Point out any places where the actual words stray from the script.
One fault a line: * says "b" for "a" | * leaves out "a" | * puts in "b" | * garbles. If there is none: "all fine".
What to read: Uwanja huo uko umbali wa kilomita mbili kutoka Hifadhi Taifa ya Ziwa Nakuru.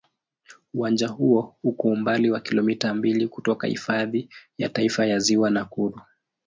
* puts in "ya"